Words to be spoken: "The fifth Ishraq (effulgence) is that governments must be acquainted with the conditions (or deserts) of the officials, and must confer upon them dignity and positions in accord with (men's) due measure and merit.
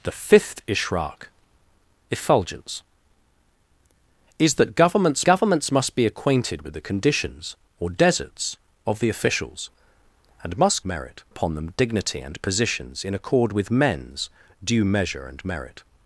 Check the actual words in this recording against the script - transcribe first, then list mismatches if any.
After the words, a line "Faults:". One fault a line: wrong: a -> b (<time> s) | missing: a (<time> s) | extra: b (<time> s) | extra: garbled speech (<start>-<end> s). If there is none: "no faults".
"The fifth Ishraq (effulgence) is that governments governments must be acquainted with the conditions (or deserts) of the officials, and must merit upon them dignity and positions in accord with (men's) due measure and merit.
Faults:
extra: governments (5.2 s)
wrong: confer -> merit (10.8 s)